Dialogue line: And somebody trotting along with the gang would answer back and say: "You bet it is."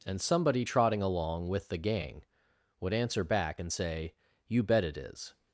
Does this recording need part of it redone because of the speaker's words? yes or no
no